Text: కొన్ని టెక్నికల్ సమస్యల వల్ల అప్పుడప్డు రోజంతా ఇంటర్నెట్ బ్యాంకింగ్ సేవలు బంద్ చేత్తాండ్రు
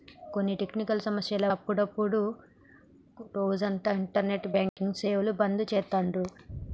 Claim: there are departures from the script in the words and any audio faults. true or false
true